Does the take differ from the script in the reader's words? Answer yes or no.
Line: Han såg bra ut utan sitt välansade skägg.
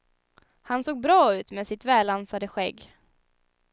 yes